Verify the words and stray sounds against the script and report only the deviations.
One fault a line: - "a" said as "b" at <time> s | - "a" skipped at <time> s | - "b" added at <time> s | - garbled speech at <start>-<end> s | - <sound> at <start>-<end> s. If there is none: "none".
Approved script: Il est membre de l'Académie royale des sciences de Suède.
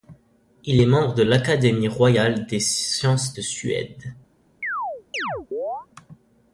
- chirp at 4.6-5.9 s